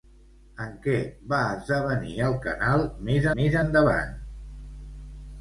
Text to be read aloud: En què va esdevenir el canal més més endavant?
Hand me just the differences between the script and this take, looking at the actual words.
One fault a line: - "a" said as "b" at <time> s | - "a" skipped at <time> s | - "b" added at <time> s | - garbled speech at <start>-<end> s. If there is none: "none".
none